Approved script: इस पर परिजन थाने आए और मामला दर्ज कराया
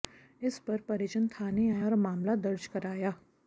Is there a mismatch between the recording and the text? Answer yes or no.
no